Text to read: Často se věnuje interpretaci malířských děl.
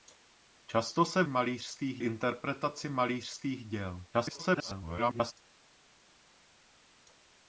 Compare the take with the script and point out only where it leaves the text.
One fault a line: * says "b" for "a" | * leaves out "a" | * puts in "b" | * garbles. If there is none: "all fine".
* says "malířských" for "věnuje"
* garbles